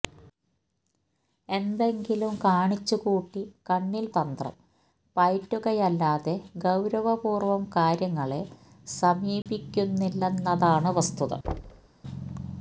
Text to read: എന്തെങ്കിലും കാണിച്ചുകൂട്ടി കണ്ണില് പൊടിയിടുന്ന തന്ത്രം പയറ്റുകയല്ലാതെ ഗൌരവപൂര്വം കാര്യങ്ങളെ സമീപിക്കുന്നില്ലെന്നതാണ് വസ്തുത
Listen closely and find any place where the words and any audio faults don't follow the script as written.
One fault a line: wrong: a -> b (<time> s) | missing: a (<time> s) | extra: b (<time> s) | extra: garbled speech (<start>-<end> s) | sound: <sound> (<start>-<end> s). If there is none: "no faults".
missing: പൊടിയിടുന്ന (4.1 s)
sound: dropout (9.4-9.5 s)
sound: thud (11.4-11.9 s)